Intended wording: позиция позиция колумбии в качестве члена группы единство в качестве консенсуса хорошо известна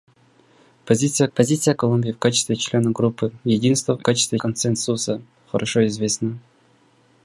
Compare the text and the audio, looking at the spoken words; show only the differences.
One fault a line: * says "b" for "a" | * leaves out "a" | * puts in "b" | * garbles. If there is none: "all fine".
all fine